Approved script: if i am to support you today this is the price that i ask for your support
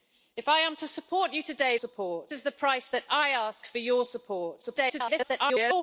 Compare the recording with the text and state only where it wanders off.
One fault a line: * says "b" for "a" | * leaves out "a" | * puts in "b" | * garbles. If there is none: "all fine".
* says "support" for "this"
* garbles